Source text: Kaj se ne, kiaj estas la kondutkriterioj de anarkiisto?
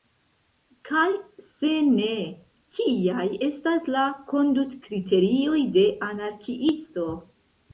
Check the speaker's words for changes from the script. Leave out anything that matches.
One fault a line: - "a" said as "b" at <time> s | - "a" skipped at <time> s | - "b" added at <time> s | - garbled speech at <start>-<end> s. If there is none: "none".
none